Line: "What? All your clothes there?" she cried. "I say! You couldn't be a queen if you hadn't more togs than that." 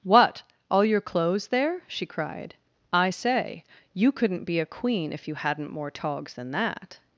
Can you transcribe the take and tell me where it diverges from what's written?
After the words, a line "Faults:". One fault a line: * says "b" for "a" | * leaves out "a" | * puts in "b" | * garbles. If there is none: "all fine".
"What? All your clothes there?" she cried. "I say! You couldn't be a queen if you hadn't more togs than that."
Faults:
all fine